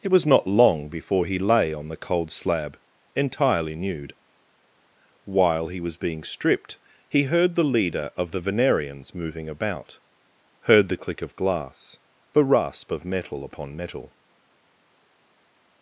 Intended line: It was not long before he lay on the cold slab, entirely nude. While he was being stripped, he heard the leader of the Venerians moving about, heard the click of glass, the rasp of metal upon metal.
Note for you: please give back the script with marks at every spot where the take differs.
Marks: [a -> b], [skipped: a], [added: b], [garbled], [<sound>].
It was not long before he lay on the cold slab, entirely nude. While he was being stripped, he heard the leader of the Venerians moving about, heard the click of glass, the rasp of metal upon metal.